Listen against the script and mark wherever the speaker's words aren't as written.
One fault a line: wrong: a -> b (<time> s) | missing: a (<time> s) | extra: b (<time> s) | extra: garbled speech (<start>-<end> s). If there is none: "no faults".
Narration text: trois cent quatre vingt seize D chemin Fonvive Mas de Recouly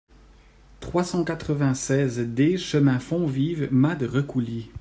no faults